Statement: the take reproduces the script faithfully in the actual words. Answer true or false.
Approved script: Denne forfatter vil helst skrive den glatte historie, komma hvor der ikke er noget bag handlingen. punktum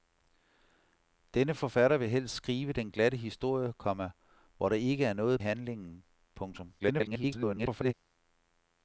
false